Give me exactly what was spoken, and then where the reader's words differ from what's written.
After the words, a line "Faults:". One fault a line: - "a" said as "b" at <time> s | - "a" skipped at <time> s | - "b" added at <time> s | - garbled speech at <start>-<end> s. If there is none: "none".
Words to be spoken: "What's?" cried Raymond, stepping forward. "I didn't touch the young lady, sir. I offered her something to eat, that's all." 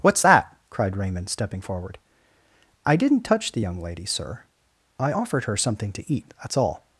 "What's that?" cried Raymond, stepping forward. "I didn't touch the young lady, sir. I offered her something to eat, that's all."
Faults:
- "that" added at 0.2 s